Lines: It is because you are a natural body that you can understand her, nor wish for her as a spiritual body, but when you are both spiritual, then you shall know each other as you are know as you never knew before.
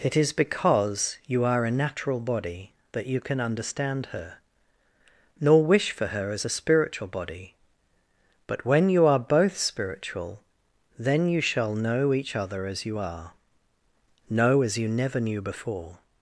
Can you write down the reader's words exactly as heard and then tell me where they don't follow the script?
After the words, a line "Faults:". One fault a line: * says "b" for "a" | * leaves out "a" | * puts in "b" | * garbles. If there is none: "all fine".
It is because you are a natural body that you can understand her, nor wish for her as a spiritual body, but when you are both spiritual, then you shall know each other as you are know as you never knew before.
Faults:
all fine